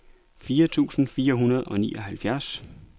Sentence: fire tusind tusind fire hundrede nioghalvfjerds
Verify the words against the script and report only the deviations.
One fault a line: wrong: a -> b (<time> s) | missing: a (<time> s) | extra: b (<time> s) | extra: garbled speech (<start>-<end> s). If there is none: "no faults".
missing: tusind (1.1 s)
extra: og (1.6 s)